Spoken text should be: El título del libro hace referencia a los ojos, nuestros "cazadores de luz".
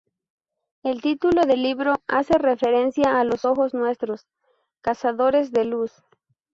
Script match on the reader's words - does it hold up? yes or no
yes